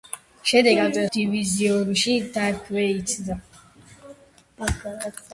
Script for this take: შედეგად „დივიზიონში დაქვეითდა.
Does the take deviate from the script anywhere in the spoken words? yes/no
no